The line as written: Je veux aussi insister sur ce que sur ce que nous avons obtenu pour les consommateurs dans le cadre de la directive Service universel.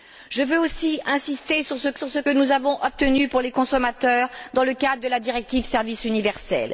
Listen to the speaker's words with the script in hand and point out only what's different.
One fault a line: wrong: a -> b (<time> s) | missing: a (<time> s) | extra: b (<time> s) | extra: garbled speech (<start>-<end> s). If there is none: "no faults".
no faults